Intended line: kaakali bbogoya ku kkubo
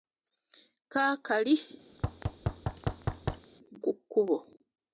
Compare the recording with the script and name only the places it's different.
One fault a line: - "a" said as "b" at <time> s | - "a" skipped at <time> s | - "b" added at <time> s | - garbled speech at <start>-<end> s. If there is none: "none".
- "bbogoya" skipped at 1.6 s